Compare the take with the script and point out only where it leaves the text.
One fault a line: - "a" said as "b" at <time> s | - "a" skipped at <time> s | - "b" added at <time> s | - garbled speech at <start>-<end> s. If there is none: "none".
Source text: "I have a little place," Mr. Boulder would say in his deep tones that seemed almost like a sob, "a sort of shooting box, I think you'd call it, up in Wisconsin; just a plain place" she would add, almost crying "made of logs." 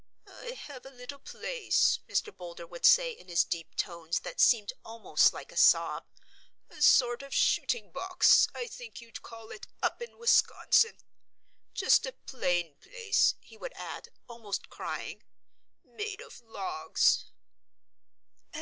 - "she" said as "he" at 13.4 s